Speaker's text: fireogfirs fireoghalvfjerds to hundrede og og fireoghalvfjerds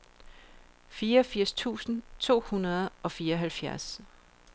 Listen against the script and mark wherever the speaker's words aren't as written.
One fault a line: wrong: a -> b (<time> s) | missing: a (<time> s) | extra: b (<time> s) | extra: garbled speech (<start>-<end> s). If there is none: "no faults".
wrong: fireoghalvfjerds -> tusind (1.5 s)
missing: og (3.1 s)